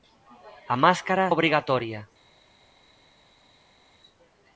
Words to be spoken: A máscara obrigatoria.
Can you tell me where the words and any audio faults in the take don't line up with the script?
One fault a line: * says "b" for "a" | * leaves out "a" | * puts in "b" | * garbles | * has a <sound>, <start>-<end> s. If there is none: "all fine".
all fine